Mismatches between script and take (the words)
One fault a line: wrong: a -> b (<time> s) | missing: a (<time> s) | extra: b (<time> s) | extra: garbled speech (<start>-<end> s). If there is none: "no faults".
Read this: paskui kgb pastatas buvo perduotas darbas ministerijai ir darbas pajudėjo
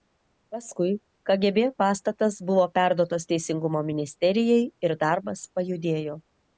wrong: darbas -> teisingumo (3.4 s)